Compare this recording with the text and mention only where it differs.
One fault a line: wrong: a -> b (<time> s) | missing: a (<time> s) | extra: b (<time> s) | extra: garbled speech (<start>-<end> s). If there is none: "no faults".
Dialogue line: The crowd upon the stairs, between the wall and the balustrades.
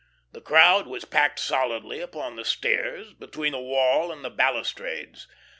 extra: was packed solidly (0.9 s)